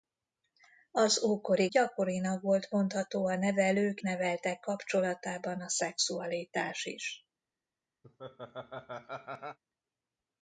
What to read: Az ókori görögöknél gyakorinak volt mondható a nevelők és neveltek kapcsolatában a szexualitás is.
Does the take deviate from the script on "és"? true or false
true